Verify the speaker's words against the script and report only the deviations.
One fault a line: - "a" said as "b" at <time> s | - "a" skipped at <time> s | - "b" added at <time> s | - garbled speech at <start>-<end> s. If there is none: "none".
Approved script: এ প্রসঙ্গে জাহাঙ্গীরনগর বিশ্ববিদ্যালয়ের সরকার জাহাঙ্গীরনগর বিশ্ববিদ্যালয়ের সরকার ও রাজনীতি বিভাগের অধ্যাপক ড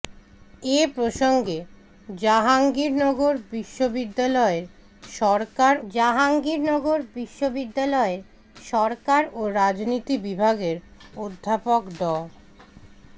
none